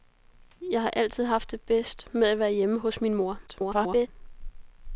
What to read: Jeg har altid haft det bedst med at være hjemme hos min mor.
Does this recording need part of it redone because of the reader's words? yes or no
yes